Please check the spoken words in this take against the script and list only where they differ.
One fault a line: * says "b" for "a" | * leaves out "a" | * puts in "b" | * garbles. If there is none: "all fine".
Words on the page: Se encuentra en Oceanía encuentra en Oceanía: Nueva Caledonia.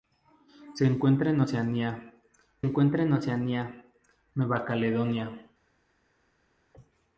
all fine